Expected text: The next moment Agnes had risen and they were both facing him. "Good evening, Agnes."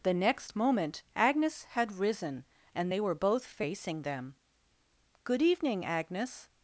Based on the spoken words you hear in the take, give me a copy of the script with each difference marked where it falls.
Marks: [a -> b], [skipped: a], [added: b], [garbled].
The next moment Agnes had risen and they were both facing [him. -> them] "Good evening, Agnes."